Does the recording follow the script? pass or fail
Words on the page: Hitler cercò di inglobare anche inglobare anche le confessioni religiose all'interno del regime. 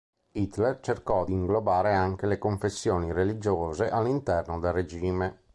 fail